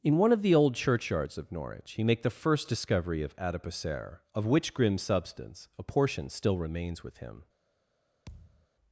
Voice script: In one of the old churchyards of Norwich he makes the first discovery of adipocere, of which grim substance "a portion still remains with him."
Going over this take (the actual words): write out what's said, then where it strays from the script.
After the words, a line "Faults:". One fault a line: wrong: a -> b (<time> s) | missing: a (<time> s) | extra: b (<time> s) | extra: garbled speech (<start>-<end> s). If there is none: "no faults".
In one of the old churchyards of Norwich he make the first discovery of adipocere, of which grim substance "a portion still remains with him."
Faults:
wrong: makes -> make (2.0 s)